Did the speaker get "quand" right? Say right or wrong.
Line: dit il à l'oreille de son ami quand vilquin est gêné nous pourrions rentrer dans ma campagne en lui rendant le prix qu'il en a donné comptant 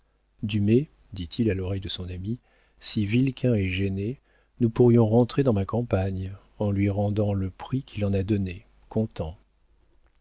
wrong